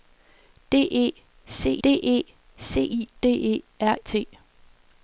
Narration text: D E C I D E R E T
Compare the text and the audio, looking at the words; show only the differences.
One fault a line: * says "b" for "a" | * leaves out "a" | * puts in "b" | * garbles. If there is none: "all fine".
* puts in "d E C"
* leaves out "E"